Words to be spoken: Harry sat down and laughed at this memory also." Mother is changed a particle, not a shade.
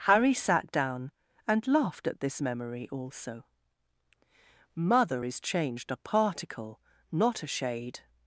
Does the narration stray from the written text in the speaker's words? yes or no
no